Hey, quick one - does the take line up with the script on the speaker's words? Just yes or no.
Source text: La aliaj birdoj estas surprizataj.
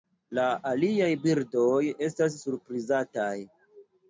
yes